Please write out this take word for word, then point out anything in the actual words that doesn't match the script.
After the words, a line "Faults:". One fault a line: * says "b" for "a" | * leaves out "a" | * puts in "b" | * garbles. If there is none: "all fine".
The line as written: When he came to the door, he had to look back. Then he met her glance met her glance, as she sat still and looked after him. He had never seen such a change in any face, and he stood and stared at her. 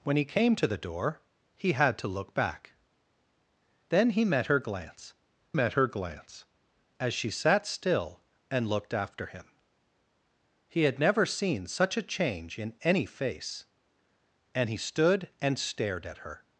When he came to the door, he had to look back. Then he met her glance met her glance, as she sat still and looked after him. He had never seen such a change in any face, and he stood and stared at her.
Faults:
all fine